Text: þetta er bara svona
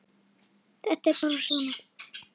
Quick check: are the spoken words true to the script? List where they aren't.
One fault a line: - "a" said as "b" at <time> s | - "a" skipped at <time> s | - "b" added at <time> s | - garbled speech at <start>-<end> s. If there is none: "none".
none